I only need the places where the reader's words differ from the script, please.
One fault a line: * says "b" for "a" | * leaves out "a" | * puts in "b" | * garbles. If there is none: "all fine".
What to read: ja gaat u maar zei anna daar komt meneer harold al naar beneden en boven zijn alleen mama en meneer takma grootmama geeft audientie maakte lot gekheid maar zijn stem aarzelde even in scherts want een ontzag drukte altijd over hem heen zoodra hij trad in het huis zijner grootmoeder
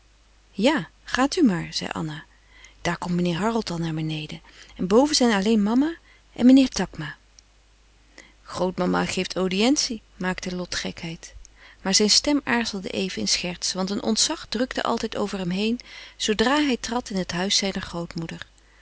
all fine